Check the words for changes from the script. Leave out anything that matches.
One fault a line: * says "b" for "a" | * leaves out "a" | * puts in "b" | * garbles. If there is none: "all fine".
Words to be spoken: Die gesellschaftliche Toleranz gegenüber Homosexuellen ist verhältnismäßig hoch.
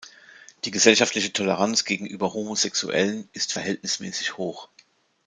all fine